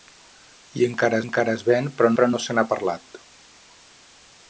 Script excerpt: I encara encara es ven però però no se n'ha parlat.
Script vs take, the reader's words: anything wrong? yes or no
no